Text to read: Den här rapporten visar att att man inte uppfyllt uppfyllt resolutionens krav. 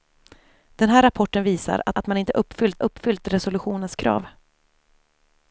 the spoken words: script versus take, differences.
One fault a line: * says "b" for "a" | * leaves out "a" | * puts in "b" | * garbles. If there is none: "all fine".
all fine